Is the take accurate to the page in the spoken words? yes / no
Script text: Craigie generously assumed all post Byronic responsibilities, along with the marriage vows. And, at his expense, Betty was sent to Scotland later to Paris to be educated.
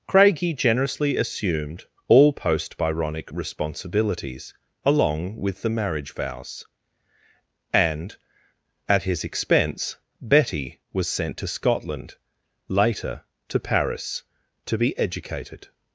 yes